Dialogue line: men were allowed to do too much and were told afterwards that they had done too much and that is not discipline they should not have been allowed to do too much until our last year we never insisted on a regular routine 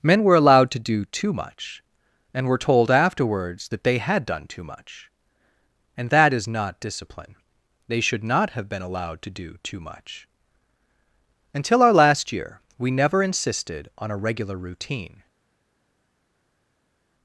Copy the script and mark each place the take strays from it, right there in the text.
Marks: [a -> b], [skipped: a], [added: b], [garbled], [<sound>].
men were allowed to do too much and were told afterwards that they had done too much and that is not discipline they should not have been allowed to do too much until our last year we never insisted on a regular routine